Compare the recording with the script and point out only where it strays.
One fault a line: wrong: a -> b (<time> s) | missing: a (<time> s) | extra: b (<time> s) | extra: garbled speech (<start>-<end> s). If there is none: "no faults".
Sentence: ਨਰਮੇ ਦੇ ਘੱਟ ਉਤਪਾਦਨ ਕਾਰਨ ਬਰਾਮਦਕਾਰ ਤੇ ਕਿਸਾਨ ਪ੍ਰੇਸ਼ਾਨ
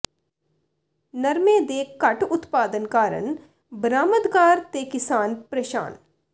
no faults